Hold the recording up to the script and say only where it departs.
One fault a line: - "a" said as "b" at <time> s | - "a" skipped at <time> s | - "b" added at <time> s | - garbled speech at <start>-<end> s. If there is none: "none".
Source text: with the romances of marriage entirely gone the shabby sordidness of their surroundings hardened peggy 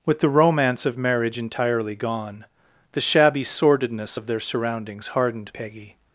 - "romances" said as "romance" at 0.3 s